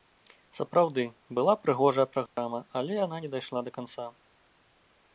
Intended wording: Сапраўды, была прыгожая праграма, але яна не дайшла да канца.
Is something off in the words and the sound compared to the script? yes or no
yes